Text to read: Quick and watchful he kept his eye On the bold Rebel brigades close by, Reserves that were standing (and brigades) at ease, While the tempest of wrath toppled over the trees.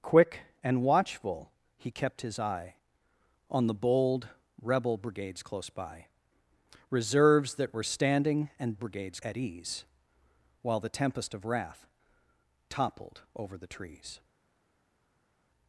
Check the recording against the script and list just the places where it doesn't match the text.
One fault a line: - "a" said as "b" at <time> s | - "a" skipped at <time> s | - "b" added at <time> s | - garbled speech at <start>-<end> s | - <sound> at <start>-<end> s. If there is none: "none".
none